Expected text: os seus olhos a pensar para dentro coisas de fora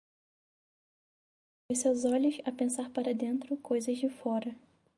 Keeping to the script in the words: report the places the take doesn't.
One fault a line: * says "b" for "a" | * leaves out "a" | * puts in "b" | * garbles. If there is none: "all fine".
all fine